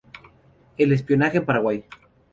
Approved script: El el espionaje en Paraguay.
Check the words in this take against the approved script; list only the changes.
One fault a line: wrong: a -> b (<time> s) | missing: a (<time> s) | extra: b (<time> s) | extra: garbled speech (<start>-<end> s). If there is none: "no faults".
missing: el (0.9 s)